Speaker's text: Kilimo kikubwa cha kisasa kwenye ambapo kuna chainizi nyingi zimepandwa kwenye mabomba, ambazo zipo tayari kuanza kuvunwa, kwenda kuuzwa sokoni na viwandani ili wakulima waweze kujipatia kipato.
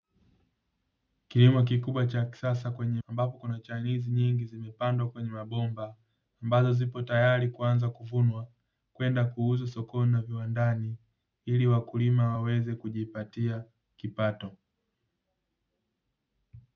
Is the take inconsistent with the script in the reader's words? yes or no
no